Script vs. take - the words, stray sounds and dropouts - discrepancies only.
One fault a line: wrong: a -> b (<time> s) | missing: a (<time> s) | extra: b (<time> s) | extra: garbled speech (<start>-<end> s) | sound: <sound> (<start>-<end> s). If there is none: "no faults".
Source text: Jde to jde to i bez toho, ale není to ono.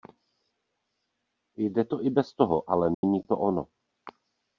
missing: jde to (2.0 s)
sound: dropout (2.9-3.0 s)